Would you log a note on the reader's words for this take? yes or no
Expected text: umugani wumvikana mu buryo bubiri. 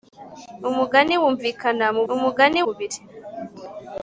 yes